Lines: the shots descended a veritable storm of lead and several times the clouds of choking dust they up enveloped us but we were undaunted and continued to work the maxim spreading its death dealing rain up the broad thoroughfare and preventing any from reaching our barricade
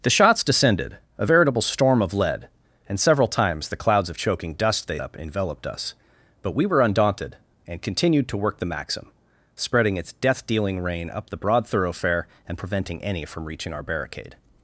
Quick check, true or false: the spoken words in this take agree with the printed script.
true